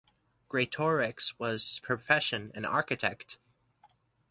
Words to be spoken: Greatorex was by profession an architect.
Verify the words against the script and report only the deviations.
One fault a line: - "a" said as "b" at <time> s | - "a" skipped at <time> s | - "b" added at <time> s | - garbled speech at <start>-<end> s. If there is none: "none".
- "by" skipped at 1.8 s